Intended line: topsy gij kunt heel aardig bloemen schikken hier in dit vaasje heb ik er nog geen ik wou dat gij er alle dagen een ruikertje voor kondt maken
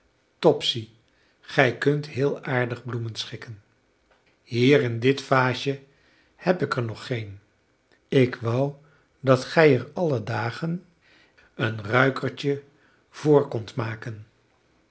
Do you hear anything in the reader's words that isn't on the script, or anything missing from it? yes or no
no